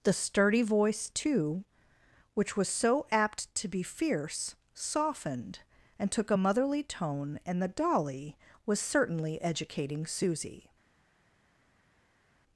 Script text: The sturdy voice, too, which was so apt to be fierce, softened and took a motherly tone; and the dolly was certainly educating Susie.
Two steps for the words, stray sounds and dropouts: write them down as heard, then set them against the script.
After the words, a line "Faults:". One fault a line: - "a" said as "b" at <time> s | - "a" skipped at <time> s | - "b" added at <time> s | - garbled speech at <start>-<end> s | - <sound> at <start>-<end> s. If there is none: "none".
The sturdy voice, too, which was so apt to be fierce, softened and took a motherly tone; and the dolly was certainly educating Susie.
Faults:
none